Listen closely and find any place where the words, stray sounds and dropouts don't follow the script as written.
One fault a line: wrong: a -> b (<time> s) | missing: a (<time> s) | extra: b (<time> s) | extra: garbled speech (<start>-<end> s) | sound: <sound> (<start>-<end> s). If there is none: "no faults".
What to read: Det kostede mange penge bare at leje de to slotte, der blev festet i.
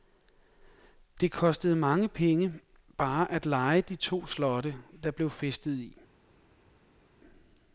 no faults